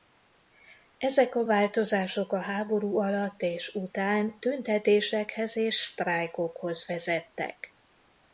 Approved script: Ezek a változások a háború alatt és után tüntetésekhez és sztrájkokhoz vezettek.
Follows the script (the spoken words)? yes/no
yes